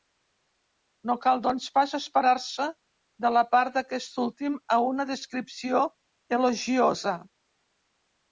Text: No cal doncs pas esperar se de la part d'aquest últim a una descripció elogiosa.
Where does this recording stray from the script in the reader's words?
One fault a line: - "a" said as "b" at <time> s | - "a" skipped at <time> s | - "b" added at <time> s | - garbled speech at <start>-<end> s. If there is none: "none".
none